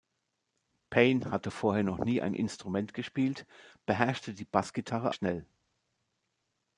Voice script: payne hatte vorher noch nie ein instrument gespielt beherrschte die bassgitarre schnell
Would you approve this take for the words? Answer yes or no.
yes